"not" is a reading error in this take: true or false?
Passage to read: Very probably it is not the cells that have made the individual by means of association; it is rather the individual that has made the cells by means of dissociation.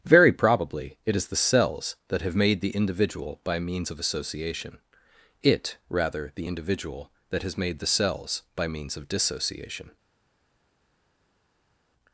true